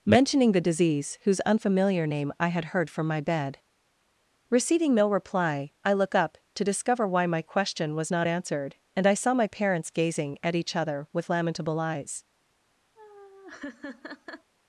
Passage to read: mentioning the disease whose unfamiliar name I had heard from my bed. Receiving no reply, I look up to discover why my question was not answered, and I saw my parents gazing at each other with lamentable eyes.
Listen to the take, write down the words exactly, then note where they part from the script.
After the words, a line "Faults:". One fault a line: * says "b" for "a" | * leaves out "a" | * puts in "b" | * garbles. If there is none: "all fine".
mentioning the disease whose unfamiliar name I had heard from my bed. Receiving no reply, I look up to discover why my question was not answered, and I saw my parents gazing at each other with lamentable eyes.
Faults:
all fine